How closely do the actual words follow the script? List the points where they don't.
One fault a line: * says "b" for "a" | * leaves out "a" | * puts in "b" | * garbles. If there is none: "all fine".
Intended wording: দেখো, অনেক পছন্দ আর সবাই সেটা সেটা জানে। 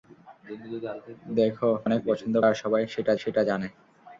all fine